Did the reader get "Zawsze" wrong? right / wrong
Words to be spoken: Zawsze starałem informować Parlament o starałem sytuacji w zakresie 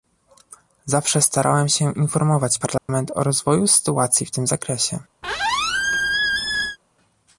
right